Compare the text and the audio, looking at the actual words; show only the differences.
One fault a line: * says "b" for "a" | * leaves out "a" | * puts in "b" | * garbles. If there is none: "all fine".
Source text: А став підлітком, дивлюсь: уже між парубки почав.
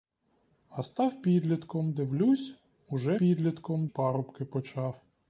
* says "підлітком" for "між"